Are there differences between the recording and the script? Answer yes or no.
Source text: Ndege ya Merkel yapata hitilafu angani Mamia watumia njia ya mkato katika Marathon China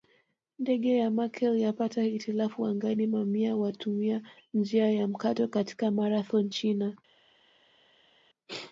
no